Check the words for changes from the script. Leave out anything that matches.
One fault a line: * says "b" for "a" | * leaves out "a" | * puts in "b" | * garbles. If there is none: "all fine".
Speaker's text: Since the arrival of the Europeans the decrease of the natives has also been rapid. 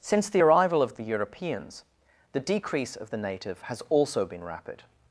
* says "native" for "natives"